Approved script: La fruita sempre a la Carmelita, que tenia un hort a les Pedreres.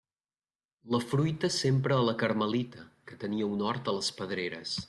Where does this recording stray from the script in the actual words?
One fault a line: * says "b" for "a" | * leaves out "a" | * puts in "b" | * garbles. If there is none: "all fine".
all fine